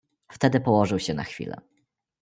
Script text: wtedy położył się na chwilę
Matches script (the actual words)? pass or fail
pass